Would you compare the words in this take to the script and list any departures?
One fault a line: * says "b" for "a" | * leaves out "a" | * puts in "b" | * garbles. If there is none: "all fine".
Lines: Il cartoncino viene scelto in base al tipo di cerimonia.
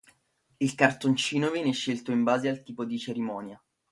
all fine